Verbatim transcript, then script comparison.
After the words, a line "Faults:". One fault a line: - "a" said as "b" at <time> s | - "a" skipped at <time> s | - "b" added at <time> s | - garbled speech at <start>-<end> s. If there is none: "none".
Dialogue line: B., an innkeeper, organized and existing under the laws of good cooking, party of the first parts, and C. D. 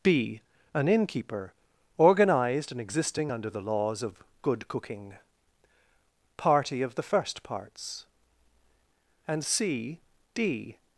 B., an innkeeper, organized and existing under the laws of good cooking, party of the first parts, and C. D.
Faults:
none